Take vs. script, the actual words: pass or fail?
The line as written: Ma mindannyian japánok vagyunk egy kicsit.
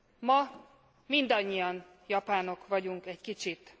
pass